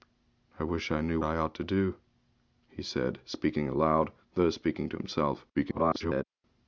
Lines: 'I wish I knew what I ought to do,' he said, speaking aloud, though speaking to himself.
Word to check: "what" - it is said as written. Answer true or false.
false